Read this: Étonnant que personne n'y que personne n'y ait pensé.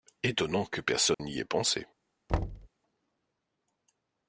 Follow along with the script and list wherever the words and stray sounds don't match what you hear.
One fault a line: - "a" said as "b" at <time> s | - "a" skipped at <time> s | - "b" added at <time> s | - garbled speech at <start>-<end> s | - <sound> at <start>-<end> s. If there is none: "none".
- dropout at 1.1-1.2 s
- "que personne n'y" skipped at 1.4 s
- thud at 2.3-2.7 s